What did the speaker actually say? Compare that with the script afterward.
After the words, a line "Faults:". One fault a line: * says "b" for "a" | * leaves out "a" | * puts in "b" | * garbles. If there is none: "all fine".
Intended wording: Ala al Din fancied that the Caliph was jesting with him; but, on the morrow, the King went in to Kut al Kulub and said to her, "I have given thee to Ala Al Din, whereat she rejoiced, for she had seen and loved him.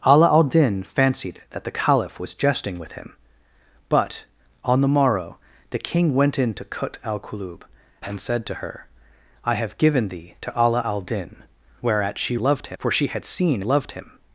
Ala al Din fancied that the Caliph was jesting with him; but, on the morrow, the King went in to Kut al Kulub and said to her, "I have given thee to Ala Al Din, whereat she loved, for she had seen loved him.
Faults:
* says "loved" for "rejoiced"
* leaves out "and"